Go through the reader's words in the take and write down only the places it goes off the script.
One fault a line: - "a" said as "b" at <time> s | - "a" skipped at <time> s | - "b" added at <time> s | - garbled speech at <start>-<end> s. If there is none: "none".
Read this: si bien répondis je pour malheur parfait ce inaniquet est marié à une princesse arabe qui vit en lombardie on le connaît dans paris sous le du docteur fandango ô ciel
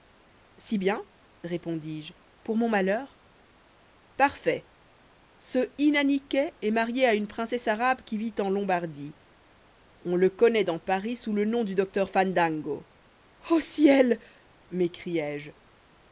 - "mon" added at 2.6 s
- "nom" added at 11.5 s